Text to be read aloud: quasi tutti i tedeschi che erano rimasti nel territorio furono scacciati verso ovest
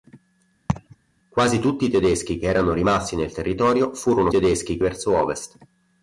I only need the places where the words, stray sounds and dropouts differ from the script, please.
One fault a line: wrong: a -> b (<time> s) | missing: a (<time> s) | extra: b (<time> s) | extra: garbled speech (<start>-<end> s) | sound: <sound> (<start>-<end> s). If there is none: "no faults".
sound: laugh (0.7-1.0 s)
wrong: scacciati -> tedeschi (4.3 s)